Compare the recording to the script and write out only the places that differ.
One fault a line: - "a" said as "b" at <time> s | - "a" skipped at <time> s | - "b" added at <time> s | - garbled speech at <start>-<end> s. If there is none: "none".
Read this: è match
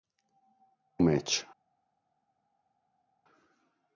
none